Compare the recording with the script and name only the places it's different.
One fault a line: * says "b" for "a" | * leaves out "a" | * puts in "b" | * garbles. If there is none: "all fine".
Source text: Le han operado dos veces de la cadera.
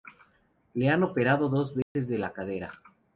all fine